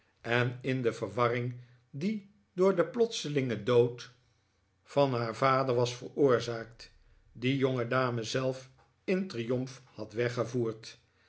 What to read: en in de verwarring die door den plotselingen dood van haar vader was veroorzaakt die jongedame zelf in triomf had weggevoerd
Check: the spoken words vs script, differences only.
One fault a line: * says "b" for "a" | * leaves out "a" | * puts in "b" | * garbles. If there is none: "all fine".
all fine